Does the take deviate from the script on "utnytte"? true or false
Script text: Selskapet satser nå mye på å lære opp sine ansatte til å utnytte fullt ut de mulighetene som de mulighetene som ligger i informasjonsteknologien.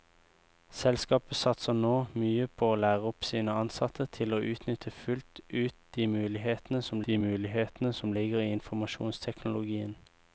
false